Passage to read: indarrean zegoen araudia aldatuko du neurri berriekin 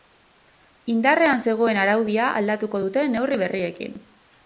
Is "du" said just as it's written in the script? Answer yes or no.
no